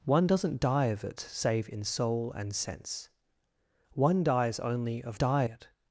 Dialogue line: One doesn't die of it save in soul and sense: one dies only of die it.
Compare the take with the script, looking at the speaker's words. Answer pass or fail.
pass